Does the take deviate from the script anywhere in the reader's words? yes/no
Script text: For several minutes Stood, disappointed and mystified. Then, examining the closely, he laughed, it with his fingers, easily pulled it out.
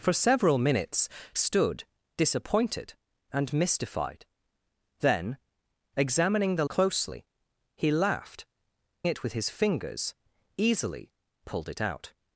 no